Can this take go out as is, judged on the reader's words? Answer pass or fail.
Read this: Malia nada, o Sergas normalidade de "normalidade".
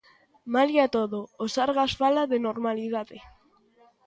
fail